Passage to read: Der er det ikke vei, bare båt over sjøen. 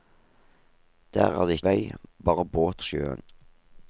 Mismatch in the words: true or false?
true